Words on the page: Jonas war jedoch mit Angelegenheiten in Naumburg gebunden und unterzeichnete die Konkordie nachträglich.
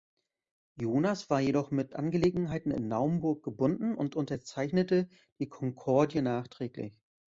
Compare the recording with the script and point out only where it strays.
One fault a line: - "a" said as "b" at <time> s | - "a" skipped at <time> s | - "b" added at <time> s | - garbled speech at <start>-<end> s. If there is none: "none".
none